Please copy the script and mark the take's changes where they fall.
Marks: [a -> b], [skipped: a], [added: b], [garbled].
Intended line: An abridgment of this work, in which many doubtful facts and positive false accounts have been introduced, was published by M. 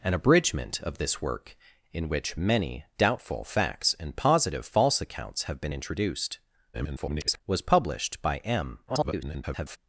An abridgment of this work, in which many doubtful facts and positive false accounts have been introduced, [garbled] was published by M. [garbled]